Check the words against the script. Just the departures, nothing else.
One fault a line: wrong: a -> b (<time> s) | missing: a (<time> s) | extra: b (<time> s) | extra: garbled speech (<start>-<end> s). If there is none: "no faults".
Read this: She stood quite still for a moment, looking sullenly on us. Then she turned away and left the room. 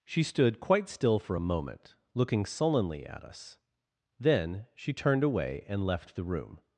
wrong: on -> at (3.1 s)